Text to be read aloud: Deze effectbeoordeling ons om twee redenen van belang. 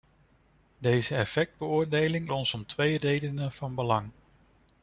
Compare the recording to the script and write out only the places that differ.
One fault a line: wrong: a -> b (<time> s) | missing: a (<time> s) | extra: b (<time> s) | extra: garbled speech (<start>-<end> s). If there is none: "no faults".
no faults